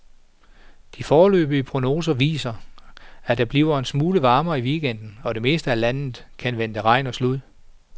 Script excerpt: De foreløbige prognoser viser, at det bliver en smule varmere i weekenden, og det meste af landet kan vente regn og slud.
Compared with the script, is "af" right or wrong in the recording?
right